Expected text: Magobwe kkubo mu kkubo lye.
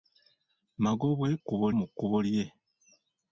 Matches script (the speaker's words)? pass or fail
pass